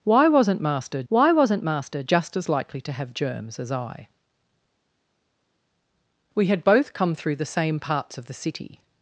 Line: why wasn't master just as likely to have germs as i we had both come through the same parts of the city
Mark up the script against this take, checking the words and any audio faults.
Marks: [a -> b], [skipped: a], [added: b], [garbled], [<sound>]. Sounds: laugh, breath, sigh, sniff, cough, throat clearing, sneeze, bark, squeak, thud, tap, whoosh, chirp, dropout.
why wasn't master [added: why wasn't master] just as likely to have germs as i we had both come through the same parts of the city